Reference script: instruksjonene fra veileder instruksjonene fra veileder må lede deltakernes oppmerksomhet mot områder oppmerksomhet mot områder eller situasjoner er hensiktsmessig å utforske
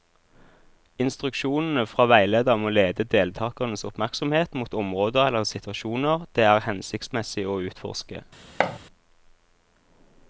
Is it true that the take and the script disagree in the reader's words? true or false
true